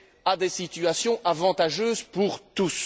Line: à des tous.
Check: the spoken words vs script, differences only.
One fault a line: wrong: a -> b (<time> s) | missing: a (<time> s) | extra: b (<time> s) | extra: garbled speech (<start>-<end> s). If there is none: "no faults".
extra: situations avantageuses pour (0.5 s)